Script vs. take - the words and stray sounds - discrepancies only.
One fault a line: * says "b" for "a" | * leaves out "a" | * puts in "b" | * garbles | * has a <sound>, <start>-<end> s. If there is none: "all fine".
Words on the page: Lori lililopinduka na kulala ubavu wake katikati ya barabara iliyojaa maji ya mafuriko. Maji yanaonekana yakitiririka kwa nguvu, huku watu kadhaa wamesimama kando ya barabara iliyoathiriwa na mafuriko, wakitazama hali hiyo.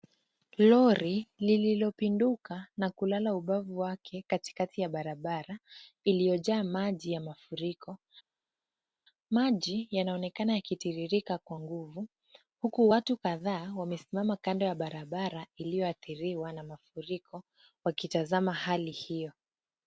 all fine